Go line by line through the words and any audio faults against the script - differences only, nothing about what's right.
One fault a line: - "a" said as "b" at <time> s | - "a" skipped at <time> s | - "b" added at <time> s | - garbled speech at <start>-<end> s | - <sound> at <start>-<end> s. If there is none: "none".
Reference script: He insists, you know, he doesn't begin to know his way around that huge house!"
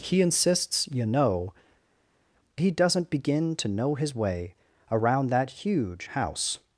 none